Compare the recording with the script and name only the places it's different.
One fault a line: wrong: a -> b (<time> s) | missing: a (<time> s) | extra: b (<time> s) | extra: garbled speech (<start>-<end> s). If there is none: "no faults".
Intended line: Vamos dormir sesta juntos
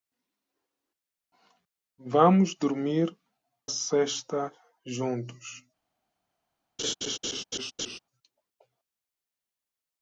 no faults